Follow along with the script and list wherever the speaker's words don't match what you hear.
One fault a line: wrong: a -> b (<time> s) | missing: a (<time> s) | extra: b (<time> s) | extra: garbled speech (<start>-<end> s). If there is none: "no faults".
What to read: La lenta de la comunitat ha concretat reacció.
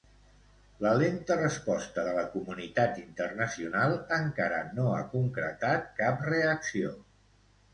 extra: resposta (1.4 s)
extra: internacional encara no (3.0 s)
extra: cap (6.0 s)